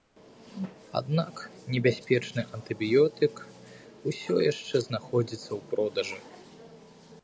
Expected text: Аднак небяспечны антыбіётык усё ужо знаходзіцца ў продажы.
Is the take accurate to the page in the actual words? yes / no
no